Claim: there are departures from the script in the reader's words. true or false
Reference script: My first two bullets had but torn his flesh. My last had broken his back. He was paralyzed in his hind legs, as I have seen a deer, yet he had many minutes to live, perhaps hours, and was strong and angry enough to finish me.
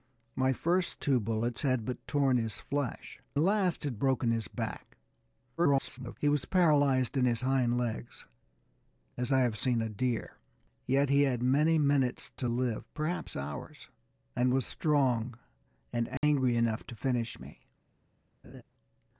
true